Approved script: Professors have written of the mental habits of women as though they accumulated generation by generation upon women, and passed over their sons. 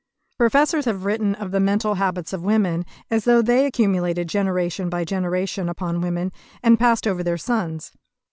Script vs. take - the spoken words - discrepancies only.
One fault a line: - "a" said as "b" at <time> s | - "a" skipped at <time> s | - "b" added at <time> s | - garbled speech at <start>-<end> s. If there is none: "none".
none